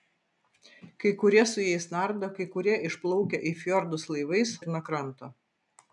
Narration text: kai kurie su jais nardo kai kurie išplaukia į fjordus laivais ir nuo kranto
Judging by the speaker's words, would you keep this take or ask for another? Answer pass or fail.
pass